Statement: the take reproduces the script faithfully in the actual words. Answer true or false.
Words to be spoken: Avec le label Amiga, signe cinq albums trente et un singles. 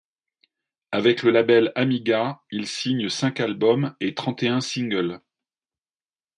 false